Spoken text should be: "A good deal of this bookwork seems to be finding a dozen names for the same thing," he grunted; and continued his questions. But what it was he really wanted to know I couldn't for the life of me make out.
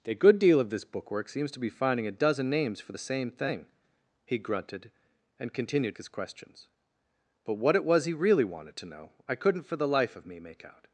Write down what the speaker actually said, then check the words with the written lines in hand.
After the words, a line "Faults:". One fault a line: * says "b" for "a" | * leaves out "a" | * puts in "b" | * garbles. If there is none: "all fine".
"A good deal of this bookwork seems to be finding a dozen names for the same thing," he grunted; and continued his questions. But what it was he really wanted to know I couldn't for the life of me make out.
Faults:
all fine